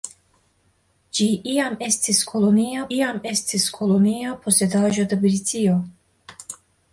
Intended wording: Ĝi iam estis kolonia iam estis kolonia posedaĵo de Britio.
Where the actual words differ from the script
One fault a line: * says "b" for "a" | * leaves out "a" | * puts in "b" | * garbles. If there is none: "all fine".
all fine